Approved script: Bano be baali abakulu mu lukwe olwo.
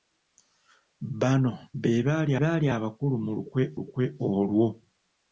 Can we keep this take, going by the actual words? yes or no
no